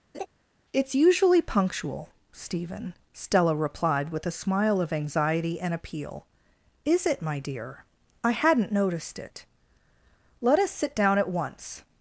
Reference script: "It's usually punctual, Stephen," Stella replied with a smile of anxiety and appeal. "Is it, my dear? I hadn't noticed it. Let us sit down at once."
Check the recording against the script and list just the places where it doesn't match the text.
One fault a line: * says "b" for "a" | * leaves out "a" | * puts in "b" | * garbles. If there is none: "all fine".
all fine